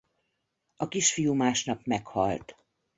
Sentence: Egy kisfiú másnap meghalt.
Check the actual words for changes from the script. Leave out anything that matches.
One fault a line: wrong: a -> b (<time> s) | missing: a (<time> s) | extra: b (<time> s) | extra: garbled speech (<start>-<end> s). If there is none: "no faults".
wrong: Egy -> A (0.8 s)